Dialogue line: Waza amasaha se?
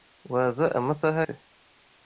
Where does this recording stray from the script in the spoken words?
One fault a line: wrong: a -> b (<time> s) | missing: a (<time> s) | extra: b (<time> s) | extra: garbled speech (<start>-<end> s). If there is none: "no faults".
no faults